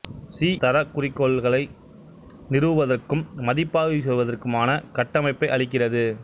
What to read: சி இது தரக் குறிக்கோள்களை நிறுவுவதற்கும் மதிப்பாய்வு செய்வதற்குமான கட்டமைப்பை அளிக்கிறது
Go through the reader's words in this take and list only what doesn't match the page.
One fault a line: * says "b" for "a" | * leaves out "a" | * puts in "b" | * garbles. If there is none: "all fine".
* leaves out "இது"